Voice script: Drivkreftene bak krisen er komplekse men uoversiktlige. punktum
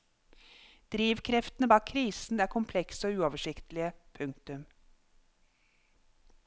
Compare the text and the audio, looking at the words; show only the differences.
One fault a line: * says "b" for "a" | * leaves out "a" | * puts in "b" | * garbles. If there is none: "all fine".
* says "og" for "men"